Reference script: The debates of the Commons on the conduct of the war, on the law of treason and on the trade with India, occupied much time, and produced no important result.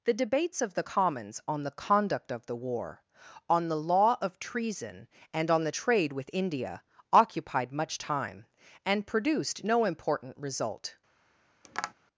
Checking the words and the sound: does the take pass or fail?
fail